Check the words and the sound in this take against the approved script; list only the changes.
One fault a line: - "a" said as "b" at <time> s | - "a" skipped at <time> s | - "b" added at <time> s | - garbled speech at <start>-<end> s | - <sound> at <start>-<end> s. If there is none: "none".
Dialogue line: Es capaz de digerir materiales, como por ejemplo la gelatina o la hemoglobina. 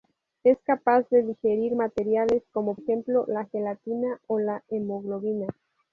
- "por" skipped at 2.8 s